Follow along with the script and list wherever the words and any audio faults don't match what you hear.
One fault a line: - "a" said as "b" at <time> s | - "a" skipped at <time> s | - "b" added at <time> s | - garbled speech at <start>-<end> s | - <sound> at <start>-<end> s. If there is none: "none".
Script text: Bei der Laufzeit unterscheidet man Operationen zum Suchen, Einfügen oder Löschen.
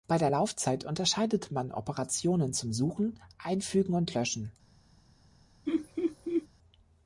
- "oder" said as "und" at 3.9 s
- laugh at 5.7-6.5 s